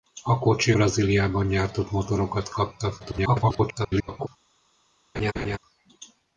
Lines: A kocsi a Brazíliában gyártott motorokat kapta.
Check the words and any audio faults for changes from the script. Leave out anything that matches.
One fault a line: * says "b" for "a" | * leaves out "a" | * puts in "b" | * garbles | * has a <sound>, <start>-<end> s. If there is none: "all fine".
* leaves out "a"
* garbles
* has a laugh, 5.1-5.6 s